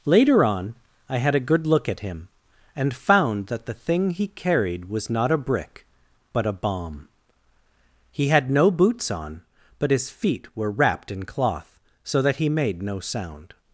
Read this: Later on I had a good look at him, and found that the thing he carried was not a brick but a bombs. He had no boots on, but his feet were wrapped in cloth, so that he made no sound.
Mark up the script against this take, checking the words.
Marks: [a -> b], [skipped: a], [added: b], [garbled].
Later on I had a good look at him, and found that the thing he carried was not a brick but a [bombs. -> bomb] He had no boots on, but his feet were wrapped in cloth, so that he made no sound.